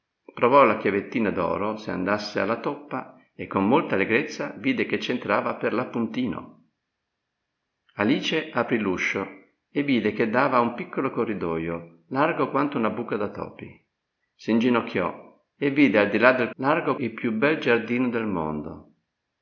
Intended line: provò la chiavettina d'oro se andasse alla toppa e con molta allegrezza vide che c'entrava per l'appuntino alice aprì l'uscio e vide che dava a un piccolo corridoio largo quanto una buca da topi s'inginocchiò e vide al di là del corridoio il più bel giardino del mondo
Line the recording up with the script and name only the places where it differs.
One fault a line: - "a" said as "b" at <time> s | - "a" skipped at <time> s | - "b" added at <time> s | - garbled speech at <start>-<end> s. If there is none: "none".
- "corridoio" said as "largo" at 16.5 s